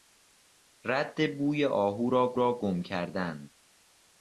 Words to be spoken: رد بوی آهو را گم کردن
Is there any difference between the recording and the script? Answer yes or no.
yes